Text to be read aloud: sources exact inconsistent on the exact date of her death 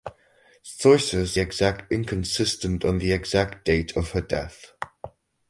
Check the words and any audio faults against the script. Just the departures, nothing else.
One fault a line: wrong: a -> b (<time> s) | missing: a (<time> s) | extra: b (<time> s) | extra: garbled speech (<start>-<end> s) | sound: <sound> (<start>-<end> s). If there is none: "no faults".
no faults